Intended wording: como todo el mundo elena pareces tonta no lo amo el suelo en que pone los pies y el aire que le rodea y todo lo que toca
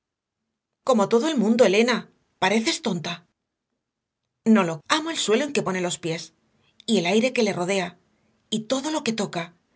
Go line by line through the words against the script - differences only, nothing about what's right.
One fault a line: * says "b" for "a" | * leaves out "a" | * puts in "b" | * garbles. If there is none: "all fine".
all fine